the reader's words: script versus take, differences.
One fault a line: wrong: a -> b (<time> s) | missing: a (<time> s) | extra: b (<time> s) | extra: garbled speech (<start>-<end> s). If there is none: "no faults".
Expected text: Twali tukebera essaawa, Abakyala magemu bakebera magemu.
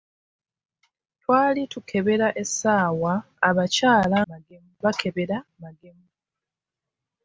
no faults